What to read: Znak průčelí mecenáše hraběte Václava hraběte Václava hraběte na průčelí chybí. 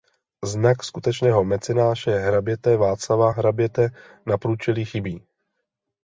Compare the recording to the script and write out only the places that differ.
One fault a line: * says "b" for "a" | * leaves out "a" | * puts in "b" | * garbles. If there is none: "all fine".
* says "skutečného" for "průčelí"
* leaves out "Václava hraběte"